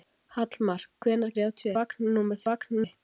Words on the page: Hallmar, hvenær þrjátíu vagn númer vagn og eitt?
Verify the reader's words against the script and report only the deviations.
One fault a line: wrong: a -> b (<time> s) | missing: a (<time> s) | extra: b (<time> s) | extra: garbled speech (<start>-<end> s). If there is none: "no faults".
no faults